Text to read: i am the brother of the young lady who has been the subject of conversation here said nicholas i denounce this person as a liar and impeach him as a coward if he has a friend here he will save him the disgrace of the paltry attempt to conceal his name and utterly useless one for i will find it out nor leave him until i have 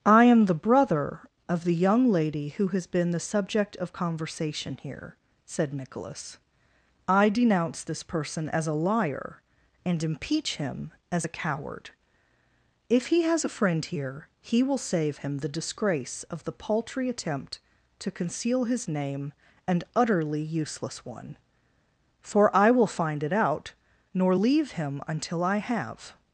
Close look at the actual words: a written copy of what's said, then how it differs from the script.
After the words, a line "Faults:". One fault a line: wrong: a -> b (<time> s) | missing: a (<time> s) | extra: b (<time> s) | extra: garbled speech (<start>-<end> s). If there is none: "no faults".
i am the brother of the young lady who has been the subject of conversation here said nicholas i denounce this person as a liar and impeach him as a coward if he has a friend here he will save him the disgrace of the paltry attempt to conceal his name and utterly useless one for i will find it out nor leave him until i have
Faults:
no faults